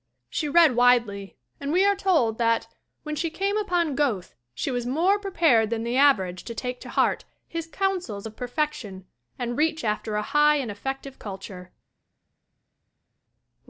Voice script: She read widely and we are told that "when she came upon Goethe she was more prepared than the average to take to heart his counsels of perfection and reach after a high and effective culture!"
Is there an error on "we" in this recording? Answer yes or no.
no